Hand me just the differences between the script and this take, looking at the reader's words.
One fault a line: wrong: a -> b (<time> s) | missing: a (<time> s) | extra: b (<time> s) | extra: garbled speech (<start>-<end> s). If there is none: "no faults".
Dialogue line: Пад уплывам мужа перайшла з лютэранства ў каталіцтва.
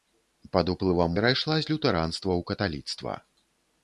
missing: мужа (1.1 s)